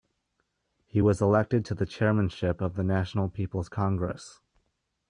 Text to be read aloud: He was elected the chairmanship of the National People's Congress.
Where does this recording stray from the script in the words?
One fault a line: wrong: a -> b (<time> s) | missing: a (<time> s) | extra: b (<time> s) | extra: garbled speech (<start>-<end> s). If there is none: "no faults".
extra: to (1.6 s)